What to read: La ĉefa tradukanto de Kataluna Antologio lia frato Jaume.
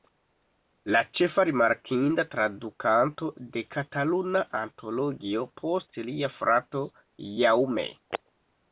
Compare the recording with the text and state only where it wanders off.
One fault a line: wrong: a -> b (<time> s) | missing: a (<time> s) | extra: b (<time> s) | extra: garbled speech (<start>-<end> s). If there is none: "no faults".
extra: rimarkinda (1.5 s)
extra: post (5.6 s)